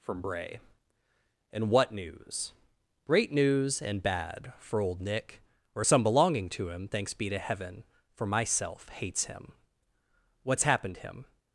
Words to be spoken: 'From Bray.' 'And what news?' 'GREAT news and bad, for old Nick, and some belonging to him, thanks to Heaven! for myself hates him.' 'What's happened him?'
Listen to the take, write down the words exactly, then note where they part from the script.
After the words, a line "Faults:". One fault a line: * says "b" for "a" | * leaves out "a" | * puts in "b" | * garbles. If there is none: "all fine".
'From Bray.' 'And what news?' 'GREAT news and bad, for old Nick, or some belonging to him, thanks be to Heaven! for myself hates him.' 'What's happened him?'
Faults:
* says "or" for "and"
* puts in "be"